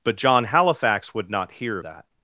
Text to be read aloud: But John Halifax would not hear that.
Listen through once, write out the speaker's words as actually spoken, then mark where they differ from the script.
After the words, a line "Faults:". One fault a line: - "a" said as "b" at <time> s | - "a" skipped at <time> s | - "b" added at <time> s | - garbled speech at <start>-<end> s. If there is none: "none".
But John Halifax would not hear that.
Faults:
none